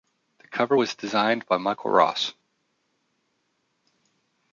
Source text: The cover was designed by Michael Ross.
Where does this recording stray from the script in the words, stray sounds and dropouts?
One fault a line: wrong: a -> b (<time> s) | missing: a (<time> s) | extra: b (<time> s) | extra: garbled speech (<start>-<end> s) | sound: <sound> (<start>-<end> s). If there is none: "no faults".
no faults